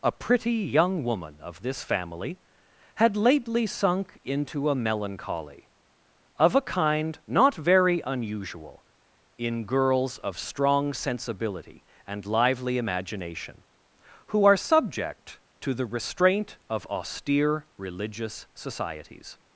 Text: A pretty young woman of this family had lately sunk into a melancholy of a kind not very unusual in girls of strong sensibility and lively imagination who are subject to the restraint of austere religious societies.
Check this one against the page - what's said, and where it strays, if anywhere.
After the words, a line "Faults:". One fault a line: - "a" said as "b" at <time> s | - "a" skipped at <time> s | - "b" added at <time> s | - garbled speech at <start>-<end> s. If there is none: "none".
A pretty young woman of this family had lately sunk into a melancholy of a kind not very unusual in girls of strong sensibility and lively imagination who are subject to the restraint of austere religious societies.
Faults:
none